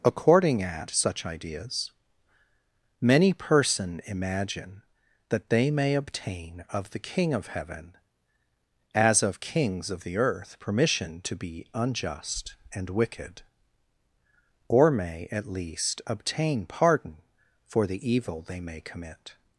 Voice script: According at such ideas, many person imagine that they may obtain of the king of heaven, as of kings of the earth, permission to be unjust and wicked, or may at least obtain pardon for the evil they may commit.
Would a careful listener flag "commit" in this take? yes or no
no